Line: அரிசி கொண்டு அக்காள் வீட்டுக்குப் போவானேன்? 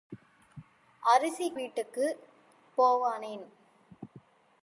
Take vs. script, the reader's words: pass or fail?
fail